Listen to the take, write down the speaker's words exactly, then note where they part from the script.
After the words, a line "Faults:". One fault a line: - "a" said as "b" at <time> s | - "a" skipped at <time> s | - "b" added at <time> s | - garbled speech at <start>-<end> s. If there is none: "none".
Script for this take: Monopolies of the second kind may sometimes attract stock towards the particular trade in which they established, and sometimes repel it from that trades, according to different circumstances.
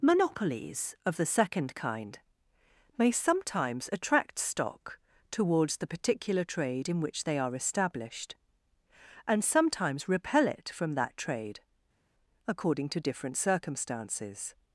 Monopolies of the second kind may sometimes attract stock towards the particular trade in which they are established, and sometimes repel it from that trade, according to different circumstances.
Faults:
- "are" added at 7.4 s
- "trades" said as "trade" at 11.2 s